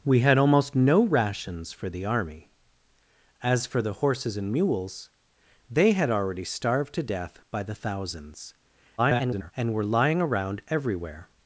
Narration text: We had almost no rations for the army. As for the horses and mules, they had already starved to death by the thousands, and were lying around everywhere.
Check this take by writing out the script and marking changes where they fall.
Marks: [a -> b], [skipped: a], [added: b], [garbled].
We had almost no rations for the army. As for the horses and mules, they had already starved to death by the thousands, [garbled] and were lying around everywhere.